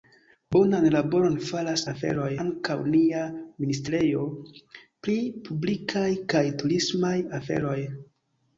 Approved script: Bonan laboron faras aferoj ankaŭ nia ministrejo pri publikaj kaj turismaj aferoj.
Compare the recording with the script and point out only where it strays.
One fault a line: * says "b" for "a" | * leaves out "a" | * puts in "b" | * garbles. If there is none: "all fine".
all fine